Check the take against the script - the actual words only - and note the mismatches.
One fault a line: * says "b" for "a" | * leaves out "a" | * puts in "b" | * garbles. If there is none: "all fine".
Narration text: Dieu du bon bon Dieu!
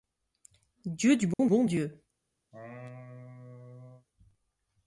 all fine